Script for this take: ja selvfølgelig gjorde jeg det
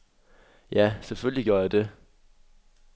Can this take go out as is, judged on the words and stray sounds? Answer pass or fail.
pass